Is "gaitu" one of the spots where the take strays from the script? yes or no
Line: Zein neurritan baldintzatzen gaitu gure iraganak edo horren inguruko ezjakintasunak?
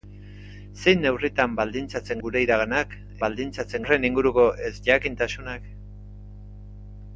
yes